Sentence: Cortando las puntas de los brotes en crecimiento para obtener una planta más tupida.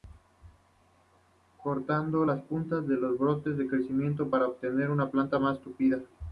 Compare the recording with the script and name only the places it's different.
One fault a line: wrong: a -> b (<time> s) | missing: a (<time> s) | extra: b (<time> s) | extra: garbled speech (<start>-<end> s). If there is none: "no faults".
no faults